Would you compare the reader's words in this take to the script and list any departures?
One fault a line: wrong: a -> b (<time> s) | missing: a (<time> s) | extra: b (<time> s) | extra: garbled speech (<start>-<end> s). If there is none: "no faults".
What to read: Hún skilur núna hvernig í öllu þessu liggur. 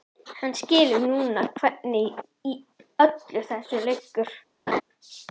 wrong: Hún -> Hann (0.4 s)